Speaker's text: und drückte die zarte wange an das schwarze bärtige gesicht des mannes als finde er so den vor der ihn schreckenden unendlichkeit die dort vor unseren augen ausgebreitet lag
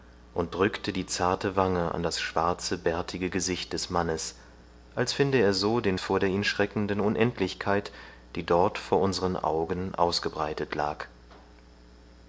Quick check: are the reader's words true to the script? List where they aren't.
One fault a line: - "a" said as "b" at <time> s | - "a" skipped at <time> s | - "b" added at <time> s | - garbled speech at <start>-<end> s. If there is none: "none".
none